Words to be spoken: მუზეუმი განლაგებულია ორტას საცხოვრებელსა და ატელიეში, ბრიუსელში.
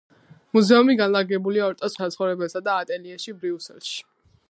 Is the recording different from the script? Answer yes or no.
no